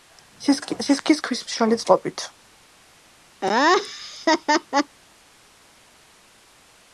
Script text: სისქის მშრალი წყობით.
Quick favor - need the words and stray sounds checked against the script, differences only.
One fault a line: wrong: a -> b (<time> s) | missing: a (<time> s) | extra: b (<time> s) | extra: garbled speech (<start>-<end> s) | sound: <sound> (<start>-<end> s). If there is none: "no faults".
extra: ქვის (1.3 s)
sound: laugh (3.4-5.0 s)